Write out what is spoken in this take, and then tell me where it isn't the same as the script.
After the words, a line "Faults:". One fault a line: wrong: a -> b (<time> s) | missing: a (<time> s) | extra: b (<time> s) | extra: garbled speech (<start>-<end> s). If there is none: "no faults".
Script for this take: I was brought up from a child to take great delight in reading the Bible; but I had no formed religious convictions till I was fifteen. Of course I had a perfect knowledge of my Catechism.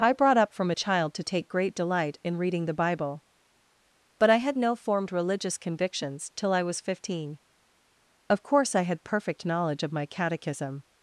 I brought up from a child to take great delight in reading the Bible; but I had no formed religious convictions till I was fifteen. Of course I had perfect knowledge of my Catechism.
Faults:
missing: was (0.1 s)
missing: a (9.0 s)